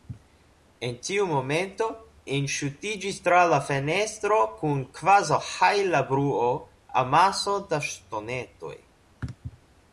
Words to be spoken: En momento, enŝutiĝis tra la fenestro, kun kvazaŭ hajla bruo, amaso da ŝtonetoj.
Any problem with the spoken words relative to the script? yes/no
yes